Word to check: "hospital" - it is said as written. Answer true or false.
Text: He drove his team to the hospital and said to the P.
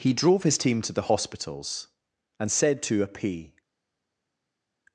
false